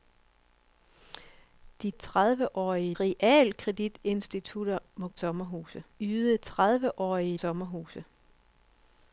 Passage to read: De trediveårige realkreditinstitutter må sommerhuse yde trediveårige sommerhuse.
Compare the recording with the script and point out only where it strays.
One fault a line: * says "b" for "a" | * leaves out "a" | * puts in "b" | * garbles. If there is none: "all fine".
all fine